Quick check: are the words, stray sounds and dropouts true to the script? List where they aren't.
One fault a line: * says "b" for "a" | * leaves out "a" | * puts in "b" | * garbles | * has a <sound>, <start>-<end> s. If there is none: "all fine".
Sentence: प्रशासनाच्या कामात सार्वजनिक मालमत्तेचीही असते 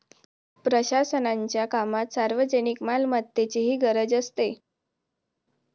* puts in "गरज"